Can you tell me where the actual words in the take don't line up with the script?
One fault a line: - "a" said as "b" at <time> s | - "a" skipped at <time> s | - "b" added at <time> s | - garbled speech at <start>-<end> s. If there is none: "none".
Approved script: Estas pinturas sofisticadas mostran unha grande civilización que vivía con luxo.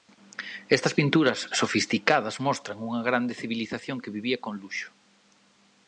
none